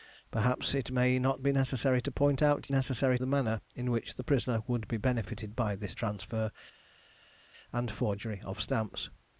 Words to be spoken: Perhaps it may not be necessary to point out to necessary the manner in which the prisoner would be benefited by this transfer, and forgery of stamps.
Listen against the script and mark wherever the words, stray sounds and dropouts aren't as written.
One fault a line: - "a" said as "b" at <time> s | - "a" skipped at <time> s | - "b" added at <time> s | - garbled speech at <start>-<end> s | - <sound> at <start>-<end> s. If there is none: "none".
none